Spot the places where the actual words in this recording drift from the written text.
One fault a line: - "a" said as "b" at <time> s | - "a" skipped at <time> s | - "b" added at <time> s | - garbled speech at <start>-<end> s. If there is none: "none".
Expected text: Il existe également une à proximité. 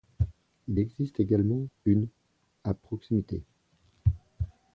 none